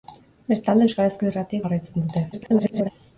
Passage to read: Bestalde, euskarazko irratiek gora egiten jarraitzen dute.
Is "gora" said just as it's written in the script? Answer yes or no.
no